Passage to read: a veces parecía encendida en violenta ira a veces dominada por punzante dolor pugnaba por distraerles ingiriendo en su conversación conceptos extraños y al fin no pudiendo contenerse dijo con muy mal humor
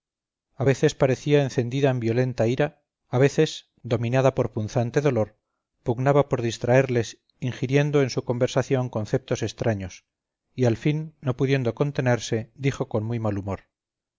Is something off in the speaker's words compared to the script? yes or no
no